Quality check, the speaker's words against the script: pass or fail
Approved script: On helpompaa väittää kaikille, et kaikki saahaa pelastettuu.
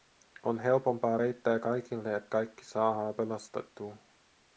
pass